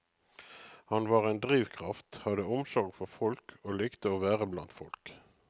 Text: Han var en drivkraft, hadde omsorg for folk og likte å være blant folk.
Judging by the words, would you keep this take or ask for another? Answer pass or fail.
pass